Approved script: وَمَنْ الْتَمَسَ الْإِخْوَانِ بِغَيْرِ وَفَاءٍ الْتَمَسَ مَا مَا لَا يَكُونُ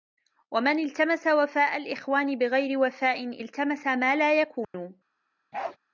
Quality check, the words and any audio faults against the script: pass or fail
fail